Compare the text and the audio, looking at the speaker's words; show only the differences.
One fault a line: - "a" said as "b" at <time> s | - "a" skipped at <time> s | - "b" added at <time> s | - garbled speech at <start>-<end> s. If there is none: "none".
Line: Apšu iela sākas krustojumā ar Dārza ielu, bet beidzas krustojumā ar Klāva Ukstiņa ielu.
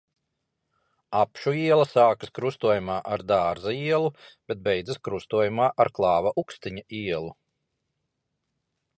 none